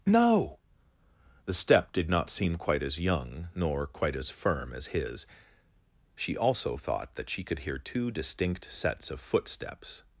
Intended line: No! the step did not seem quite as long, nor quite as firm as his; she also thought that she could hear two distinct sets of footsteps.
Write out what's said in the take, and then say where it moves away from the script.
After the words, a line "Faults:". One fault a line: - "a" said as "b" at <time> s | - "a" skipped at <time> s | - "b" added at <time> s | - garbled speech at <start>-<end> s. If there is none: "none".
No! the step did not seem quite as young, nor quite as firm as his; she also thought that she could hear two distinct sets of footsteps.
Faults:
- "long" said as "young" at 3.0 s